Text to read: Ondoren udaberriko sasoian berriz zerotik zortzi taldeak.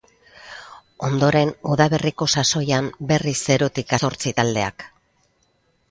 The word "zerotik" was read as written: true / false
true